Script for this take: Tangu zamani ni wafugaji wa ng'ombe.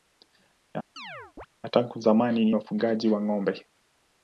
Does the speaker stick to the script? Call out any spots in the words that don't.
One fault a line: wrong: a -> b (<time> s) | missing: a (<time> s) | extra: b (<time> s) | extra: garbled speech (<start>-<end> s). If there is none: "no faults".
no faults